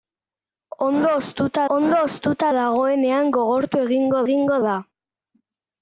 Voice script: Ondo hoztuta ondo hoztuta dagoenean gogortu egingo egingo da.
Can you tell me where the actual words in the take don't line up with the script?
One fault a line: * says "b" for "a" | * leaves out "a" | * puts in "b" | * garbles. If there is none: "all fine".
all fine